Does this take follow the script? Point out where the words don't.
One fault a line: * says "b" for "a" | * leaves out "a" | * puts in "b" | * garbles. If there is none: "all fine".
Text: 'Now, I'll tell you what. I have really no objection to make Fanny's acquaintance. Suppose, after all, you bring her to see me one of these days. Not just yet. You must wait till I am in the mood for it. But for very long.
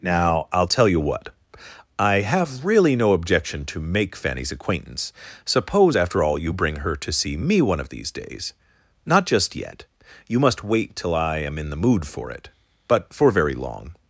all fine